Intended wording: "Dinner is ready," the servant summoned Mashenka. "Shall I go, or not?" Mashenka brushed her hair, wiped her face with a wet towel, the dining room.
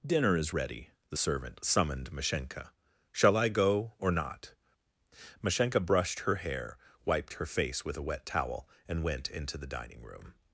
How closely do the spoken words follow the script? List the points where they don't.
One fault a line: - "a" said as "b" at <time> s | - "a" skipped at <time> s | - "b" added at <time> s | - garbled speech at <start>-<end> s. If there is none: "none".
- "and went into" added at 8.9 s